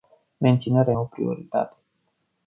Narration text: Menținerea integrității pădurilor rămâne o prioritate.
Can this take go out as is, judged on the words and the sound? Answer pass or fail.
fail